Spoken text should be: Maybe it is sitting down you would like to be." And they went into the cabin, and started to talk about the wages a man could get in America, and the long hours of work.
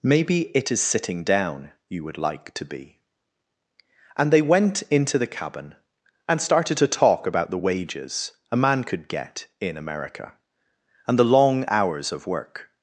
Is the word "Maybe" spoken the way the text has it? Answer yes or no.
yes